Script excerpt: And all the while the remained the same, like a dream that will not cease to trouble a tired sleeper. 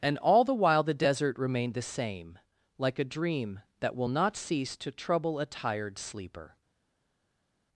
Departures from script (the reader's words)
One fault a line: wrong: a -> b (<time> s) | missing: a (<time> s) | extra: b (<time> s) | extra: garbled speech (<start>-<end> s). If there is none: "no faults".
extra: desert (0.9 s)